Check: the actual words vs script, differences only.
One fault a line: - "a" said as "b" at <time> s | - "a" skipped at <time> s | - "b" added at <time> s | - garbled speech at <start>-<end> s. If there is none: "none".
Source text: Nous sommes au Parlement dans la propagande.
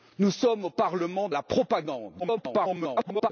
- "dans" skipped at 1.3 s
- garbled speech at 2.2-3.3 s